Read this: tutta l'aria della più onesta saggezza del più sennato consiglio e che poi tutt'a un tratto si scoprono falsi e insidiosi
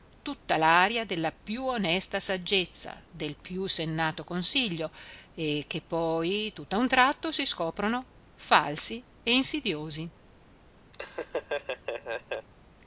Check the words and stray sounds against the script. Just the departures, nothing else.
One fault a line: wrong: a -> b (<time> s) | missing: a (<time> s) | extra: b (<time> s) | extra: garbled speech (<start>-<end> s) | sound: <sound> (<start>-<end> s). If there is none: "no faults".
sound: laugh (10.9-12.5 s)